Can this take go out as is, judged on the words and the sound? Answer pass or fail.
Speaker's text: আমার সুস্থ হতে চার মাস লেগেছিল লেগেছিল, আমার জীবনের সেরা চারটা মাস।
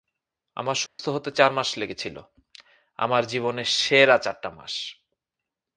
fail